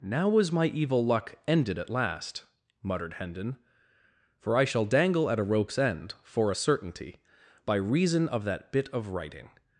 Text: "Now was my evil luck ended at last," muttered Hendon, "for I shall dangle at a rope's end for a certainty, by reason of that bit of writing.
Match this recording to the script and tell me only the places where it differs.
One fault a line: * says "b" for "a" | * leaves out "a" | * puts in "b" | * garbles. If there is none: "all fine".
all fine